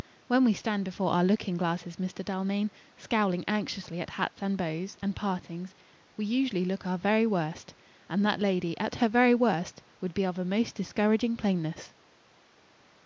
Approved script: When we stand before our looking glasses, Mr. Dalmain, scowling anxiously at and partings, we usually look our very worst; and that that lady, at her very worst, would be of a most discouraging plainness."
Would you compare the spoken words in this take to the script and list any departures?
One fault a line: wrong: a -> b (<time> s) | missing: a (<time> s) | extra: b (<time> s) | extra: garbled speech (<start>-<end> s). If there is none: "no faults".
extra: hats (4.2 s)
extra: bows and (4.6 s)
missing: that (8.4 s)